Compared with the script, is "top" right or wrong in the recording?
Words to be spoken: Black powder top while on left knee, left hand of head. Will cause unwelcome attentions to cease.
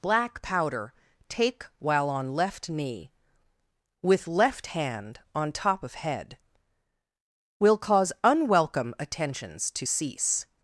wrong